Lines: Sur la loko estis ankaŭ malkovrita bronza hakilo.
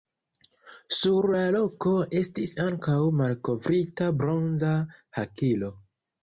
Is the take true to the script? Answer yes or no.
yes